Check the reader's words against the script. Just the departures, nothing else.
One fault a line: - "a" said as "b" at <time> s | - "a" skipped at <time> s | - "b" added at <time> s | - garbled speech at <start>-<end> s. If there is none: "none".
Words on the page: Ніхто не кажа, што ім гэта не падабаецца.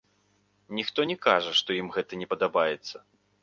none